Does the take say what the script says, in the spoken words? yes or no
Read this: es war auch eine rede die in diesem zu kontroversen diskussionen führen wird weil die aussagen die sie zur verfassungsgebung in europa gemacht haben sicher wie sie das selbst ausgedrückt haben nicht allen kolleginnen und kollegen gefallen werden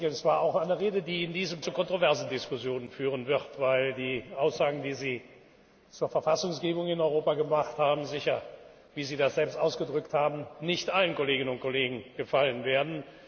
yes